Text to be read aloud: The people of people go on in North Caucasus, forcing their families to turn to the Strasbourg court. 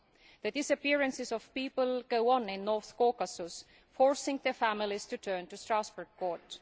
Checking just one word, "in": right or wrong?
right